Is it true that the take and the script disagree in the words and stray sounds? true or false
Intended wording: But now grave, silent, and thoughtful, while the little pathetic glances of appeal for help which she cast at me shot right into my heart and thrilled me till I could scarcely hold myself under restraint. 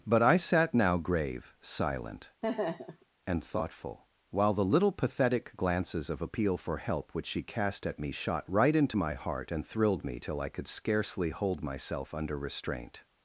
true